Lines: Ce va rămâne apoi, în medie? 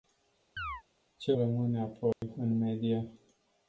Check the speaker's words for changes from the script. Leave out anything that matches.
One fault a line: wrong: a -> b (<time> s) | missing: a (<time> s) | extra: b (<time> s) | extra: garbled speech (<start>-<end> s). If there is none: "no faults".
missing: va (1.3 s)